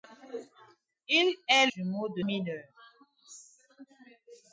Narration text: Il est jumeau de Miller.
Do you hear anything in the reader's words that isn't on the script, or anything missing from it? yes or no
no